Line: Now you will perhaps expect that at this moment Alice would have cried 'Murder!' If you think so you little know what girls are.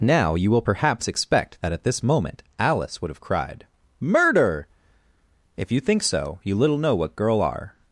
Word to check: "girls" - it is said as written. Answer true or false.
false